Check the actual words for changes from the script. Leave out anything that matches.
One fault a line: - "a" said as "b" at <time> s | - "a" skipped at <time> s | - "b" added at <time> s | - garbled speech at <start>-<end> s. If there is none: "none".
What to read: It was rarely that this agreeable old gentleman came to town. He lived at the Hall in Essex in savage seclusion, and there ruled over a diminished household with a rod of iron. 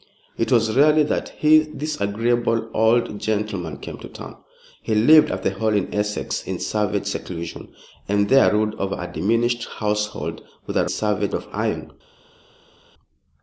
- "rod" said as "savage" at 10.9 s